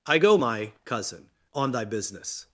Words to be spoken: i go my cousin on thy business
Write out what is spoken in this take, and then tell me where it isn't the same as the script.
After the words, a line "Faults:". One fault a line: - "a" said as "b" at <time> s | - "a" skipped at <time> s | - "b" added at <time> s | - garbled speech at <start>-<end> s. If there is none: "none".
i go my cousin on thy business
Faults:
none